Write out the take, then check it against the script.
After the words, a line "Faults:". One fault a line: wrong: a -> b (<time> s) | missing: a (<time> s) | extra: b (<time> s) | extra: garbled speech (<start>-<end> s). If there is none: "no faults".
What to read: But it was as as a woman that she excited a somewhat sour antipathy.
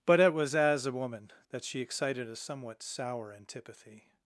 But it was as a woman that she excited a somewhat sour antipathy.
Faults:
missing: as (0.9 s)